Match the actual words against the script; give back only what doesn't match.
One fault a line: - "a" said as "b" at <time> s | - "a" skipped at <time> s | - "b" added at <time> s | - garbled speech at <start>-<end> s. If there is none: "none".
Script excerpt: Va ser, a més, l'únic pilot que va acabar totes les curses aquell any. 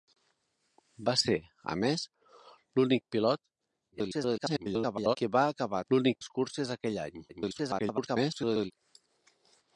- garbled speech at 3.9-5.2 s
- "totes" said as "l'únic" at 5.9 s
- garbled speech at 7.3-8.7 s